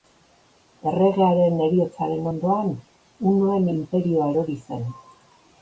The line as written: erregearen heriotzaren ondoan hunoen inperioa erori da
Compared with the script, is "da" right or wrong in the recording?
wrong